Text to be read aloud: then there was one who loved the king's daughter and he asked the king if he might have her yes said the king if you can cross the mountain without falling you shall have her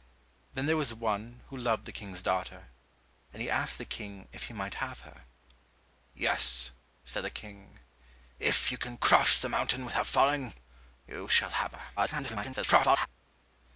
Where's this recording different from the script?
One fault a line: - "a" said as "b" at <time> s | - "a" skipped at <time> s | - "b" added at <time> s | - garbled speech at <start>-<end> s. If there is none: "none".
- garbled speech at 12.0-13.1 s